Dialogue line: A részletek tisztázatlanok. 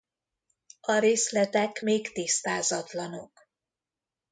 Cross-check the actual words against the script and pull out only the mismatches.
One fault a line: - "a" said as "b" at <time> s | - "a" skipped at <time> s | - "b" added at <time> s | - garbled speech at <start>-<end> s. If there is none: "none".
- "még" added at 1.8 s